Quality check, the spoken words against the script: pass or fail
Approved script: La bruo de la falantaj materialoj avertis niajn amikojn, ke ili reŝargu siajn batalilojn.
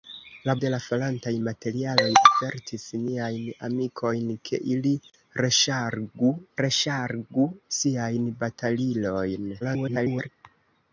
fail